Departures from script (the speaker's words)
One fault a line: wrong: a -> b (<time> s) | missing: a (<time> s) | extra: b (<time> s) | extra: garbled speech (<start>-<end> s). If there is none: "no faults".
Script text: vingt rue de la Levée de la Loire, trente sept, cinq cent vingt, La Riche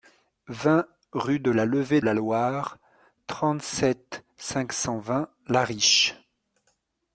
missing: de (2.0 s)